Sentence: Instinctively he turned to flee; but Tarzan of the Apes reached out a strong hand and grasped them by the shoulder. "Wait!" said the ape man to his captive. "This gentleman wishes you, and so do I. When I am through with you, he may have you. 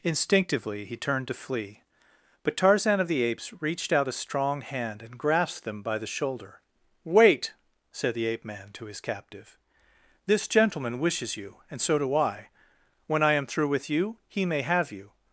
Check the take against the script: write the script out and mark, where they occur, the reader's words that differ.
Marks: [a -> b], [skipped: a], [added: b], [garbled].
Instinctively he turned to flee; but Tarzan of the Apes reached out a strong hand and grasped them by the shoulder. "Wait!" said the ape man to his captive. "This gentleman wishes you, and so do I. When I am through with you, he may have you.